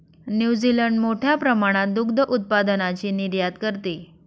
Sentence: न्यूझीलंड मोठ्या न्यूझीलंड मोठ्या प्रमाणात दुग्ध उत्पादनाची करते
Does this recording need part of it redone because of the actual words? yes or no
yes